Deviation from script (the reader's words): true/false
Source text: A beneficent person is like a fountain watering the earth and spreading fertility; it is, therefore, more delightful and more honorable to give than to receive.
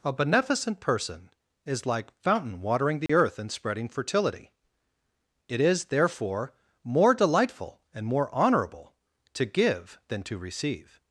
true